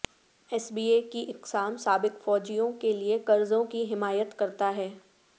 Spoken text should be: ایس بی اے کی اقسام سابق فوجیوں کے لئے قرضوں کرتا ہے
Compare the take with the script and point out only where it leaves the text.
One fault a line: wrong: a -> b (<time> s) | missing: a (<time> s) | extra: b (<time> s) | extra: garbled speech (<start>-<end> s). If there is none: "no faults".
extra: کی حمایت (3.7 s)